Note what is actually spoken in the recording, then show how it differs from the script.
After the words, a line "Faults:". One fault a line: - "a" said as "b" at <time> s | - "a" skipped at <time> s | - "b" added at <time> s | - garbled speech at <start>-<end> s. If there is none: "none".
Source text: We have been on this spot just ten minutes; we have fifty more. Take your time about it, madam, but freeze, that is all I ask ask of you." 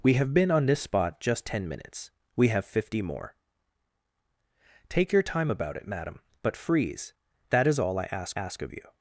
We have been on this spot just ten minutes; we have fifty more. Take your time about it, madam, but freeze, that is all I ask ask of you."
Faults:
none